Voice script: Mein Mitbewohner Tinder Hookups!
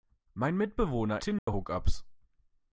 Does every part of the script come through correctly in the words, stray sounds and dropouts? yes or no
no